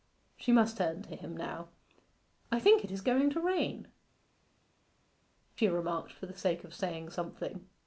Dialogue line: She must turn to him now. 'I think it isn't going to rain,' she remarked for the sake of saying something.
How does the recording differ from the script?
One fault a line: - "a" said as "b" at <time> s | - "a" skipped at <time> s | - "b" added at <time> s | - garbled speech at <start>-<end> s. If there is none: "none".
- "isn't" said as "is" at 2.9 s